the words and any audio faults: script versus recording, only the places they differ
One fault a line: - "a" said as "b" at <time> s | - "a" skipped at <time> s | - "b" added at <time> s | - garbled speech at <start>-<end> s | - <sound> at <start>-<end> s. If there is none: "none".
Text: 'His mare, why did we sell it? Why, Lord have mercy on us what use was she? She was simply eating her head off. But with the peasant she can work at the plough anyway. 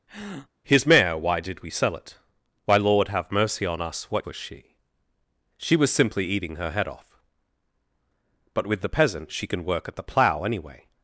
- breath at 0.1-0.5 s
- "use" skipped at 4.3 s